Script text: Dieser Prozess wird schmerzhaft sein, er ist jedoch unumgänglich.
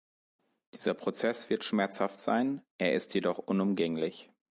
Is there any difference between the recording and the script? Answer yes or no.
no